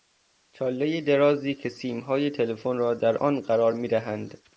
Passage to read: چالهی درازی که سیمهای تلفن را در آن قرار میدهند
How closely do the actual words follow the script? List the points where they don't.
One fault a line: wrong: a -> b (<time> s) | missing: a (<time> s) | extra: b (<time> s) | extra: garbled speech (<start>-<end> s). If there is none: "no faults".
no faults